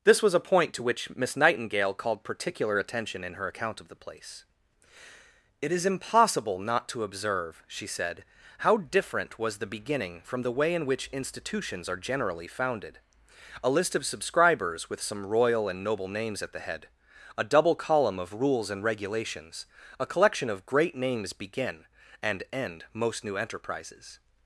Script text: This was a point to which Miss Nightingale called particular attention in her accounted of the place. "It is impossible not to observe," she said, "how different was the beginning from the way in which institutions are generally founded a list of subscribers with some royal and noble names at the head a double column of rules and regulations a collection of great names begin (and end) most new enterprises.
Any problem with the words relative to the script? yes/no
yes